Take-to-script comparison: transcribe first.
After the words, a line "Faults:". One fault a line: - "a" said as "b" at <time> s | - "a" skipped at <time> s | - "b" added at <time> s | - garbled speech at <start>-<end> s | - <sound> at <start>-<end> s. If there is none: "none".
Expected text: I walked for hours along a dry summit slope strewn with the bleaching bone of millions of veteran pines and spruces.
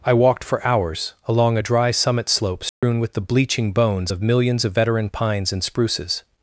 I walked for hours along a dry summit slope strewn with the bleaching bones of millions of veteran pines and spruces.
Faults:
- dropout at 2.7-2.8 s
- "bone" said as "bones" at 3.7 s